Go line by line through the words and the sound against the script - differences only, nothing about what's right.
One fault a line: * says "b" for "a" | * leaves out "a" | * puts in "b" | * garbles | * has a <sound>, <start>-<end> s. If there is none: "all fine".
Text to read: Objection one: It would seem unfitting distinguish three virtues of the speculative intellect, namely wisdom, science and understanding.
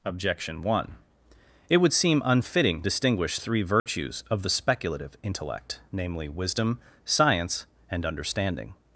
* has a dropout, 3.8-3.9 s